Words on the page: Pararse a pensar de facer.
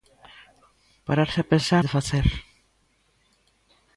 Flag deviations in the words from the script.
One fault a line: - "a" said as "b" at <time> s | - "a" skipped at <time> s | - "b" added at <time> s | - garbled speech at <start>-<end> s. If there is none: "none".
none